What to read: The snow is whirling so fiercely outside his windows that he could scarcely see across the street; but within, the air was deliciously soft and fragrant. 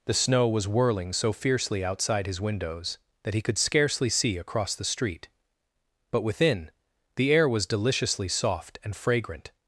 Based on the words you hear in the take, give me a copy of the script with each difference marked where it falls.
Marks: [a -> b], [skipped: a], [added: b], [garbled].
The snow [is -> was] whirling so fiercely outside his windows that he could scarcely see across the street; but within, the air was deliciously soft and fragrant.